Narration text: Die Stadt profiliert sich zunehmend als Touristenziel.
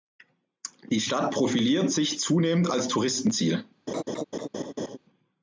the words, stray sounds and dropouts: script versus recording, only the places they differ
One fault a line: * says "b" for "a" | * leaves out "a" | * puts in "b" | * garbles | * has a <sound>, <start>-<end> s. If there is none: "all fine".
* has a laugh, 3.9-5.0 s